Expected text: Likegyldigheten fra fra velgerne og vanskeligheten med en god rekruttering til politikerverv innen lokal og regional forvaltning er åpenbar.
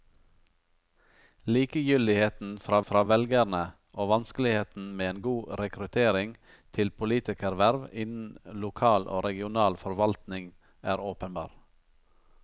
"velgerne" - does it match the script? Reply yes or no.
yes